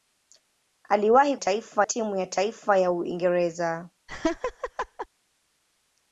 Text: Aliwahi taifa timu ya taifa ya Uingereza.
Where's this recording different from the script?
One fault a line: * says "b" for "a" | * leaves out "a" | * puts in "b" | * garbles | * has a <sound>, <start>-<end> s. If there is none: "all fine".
* has a laugh, 4.1-5.1 s